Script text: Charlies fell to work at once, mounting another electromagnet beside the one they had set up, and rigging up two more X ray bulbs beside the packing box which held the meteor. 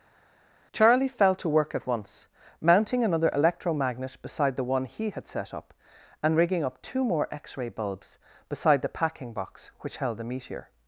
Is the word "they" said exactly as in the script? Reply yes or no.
no